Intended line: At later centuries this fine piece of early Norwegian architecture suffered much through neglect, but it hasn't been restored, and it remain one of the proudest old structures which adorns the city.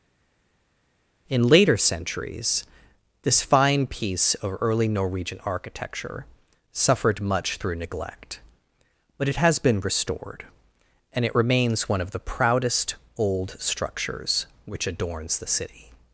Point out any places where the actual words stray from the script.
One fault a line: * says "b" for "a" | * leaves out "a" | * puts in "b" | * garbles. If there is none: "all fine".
* says "In" for "At"
* says "has" for "hasn't"
* says "remains" for "remain"